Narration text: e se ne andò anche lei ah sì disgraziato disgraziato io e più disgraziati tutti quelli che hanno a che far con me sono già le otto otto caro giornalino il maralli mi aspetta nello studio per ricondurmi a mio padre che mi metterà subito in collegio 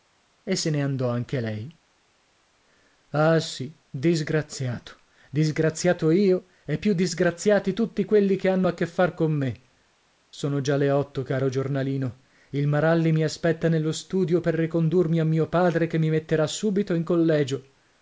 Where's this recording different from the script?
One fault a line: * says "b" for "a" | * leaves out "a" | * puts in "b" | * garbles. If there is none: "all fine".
* leaves out "otto"